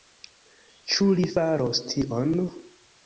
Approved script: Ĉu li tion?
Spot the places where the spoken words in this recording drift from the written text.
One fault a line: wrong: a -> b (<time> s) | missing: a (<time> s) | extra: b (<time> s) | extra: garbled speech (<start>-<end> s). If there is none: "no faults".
extra: faros (1.3 s)